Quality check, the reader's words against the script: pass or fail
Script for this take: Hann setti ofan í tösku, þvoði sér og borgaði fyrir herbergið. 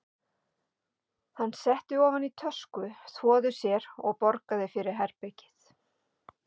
pass